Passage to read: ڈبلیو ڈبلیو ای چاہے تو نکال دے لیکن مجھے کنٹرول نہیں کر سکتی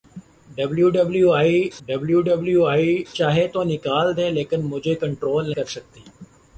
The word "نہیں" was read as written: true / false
false